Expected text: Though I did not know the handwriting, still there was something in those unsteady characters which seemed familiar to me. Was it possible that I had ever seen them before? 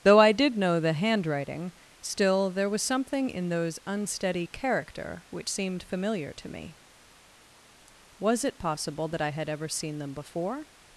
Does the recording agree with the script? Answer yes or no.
no